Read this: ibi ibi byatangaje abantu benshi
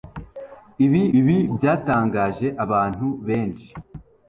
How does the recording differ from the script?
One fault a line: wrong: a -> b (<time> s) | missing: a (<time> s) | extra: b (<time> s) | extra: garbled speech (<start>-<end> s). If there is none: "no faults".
no faults